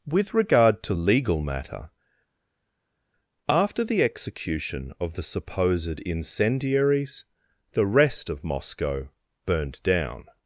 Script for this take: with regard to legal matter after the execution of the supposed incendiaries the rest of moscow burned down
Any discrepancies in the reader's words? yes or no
no